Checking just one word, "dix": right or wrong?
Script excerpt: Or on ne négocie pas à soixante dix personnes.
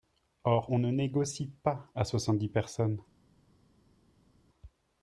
right